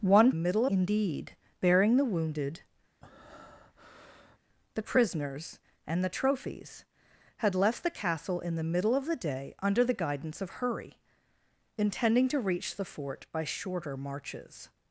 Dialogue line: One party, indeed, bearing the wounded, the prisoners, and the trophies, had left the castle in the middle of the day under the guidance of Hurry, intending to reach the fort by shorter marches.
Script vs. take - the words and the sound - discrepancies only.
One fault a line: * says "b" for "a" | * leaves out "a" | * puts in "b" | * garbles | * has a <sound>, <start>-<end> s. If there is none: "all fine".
* says "middle" for "party"
* has a breath, 3.0-4.4 s